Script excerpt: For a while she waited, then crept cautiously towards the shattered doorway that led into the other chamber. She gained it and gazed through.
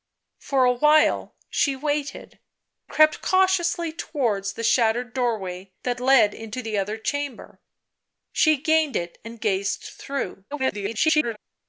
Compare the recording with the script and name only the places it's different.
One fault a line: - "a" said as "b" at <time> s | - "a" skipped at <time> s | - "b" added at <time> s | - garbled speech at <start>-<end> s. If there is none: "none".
- "then" skipped at 2.4 s
- garbled speech at 10.5-11.4 s